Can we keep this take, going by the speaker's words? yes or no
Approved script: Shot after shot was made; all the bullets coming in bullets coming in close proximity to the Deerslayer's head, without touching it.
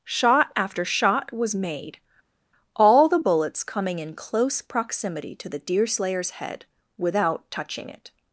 no